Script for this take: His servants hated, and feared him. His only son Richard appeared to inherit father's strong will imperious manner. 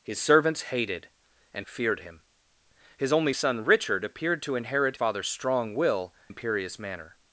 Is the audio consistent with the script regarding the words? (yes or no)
yes